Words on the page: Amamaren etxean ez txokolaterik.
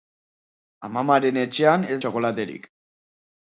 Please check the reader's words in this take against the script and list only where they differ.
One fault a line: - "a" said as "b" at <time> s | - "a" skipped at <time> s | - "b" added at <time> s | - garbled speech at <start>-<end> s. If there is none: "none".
none